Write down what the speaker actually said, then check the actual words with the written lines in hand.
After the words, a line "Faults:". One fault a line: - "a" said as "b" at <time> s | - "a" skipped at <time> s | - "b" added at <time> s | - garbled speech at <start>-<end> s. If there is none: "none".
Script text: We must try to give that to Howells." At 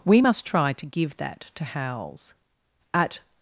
We must try to give that to Howells." At
Faults:
none